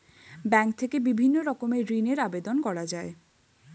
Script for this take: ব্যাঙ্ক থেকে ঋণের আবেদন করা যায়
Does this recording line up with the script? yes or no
no